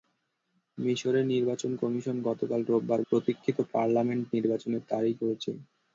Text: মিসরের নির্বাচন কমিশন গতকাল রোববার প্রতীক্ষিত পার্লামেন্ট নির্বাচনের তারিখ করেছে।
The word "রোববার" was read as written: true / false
true